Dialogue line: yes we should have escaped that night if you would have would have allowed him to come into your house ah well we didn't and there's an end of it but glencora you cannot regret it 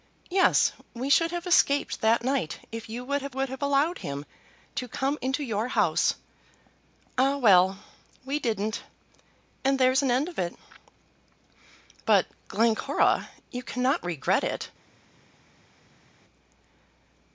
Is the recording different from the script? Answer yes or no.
no